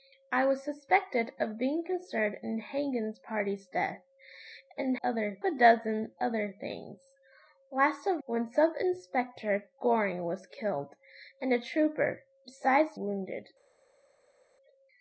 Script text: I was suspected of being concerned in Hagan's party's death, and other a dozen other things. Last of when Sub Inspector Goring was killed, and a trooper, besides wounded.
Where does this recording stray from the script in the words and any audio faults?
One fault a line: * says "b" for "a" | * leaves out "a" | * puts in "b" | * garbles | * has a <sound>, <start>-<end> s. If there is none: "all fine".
all fine